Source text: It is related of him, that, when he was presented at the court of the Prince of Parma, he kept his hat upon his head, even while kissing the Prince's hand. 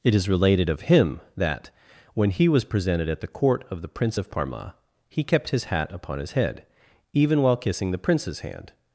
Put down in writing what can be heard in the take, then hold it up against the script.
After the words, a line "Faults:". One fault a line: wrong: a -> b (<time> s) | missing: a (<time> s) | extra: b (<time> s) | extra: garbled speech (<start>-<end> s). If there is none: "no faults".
It is related of him, that, when he was presented at the court of the Prince of Parma, he kept his hat upon his head, even while kissing the Prince's hand.
Faults:
no faults